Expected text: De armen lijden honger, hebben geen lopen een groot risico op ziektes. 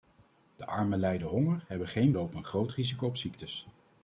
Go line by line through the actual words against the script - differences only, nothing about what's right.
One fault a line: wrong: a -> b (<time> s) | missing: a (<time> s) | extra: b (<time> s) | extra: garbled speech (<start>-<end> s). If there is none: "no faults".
no faults